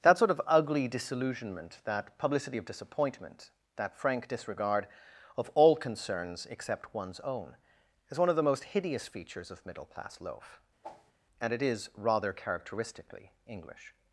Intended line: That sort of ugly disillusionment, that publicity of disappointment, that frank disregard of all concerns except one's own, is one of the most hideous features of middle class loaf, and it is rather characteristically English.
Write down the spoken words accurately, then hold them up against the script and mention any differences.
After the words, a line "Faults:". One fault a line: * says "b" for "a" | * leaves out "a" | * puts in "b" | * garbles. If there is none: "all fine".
That sort of ugly disillusionment, that publicity of disappointment, that frank disregard of all concerns except one's own, is one of the most hideous features of middle class loaf, and it is rather characteristically English.
Faults:
all fine